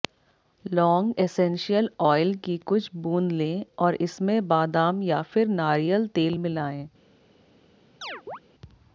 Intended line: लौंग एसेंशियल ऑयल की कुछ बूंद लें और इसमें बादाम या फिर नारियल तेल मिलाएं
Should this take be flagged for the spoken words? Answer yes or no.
no